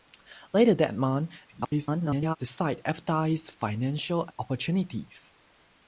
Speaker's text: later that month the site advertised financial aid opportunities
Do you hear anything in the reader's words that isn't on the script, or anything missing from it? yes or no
yes